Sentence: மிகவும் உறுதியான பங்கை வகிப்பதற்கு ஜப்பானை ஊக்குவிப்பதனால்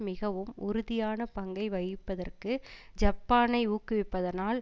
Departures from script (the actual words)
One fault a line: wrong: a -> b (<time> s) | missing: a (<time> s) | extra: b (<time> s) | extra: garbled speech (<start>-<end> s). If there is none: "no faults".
no faults